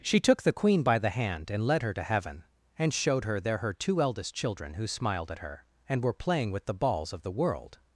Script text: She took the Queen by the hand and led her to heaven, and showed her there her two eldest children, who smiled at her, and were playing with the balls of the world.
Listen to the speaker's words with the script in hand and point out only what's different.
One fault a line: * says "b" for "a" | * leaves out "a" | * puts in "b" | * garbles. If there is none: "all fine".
all fine